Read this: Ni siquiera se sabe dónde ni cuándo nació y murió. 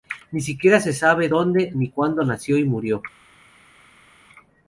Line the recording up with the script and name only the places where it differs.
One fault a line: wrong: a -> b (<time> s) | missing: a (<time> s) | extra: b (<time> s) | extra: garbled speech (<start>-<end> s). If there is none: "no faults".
no faults